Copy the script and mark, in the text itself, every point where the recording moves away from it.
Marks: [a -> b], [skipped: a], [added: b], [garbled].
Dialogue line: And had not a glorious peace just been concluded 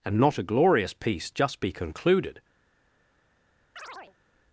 And [skipped: had] not a glorious peace just [been -> be] concluded